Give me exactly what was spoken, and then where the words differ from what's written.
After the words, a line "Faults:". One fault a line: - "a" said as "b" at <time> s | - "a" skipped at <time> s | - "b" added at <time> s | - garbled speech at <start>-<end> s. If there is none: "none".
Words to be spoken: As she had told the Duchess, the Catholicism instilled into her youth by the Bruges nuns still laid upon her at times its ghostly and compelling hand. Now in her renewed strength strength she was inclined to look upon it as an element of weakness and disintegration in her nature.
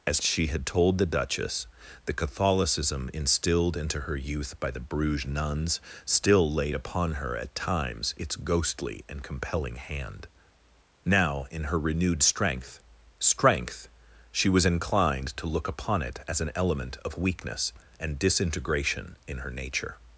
As she had told the Duchess, the Catholicism instilled into her youth by the Bruges nuns still laid upon her at times its ghostly and compelling hand. Now in her renewed strength strength she was inclined to look upon it as an element of weakness and disintegration in her nature.
Faults:
none